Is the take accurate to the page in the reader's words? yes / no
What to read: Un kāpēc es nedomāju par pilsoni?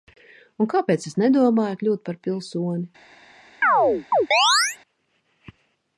no